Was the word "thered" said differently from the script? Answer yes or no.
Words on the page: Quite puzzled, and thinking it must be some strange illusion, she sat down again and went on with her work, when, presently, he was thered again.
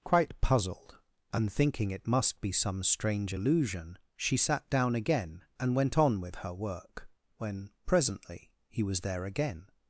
yes